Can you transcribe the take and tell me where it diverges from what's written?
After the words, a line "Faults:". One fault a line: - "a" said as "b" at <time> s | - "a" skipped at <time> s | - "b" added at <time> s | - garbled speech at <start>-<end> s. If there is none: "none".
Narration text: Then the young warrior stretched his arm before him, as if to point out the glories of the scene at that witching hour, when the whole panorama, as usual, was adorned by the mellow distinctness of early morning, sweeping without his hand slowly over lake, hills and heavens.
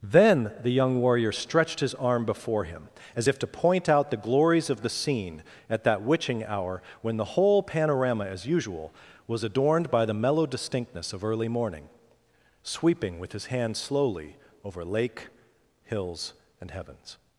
Then the young warrior stretched his arm before him, as if to point out the glories of the scene at that witching hour, when the whole panorama, as usual, was adorned by the mellow distinctness of early morning, sweeping with his hand slowly over lake, hills and heavens.
Faults:
- "without" said as "with" at 13.2 s